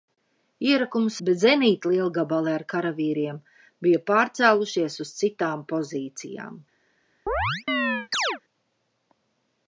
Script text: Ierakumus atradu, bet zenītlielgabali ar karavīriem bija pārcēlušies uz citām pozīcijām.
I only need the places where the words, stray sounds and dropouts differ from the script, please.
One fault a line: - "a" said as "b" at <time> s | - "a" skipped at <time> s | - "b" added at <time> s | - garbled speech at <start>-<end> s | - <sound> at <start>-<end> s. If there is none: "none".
- "atradu" skipped at 1.2 s
- chirp at 7.3-8.4 s